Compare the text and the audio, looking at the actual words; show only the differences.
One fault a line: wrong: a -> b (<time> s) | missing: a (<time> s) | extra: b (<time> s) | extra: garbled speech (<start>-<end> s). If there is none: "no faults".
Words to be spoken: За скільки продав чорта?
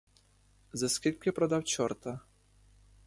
no faults